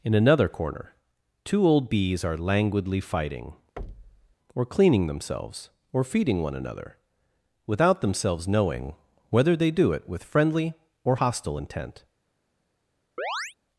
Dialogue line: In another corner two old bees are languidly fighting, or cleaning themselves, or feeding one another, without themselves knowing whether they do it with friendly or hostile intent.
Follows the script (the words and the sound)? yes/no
no